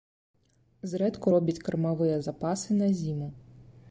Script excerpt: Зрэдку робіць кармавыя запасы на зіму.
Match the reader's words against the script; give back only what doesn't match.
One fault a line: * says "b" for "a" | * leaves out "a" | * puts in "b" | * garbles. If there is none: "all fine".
all fine